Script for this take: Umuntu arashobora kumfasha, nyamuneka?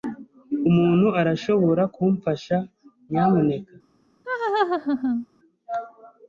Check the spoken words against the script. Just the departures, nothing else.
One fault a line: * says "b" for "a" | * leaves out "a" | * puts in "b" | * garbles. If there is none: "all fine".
all fine